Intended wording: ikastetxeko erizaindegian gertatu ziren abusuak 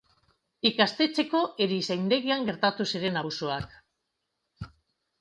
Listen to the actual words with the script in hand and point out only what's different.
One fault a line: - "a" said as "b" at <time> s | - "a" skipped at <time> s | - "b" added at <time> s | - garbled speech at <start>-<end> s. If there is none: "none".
none